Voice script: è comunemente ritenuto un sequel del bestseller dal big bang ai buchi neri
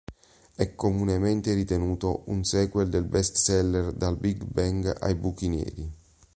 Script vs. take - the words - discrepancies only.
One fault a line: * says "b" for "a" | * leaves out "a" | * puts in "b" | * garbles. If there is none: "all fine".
all fine